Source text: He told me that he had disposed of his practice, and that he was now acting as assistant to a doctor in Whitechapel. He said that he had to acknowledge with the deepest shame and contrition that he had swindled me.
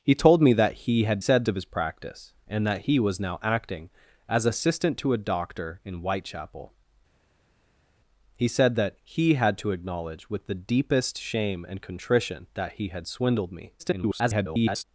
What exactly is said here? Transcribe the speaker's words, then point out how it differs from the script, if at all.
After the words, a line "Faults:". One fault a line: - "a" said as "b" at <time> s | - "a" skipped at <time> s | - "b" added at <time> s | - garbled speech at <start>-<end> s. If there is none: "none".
He told me that he had said of his practice, and that he was now acting as assistant to a doctor in Whitechapel. He said that he had to acknowledge with the deepest shame and contrition that he had swindled me. [garbled]
Faults:
- "disposed" said as "said" at 1.2 s
- garbled speech at 13.8-14.8 s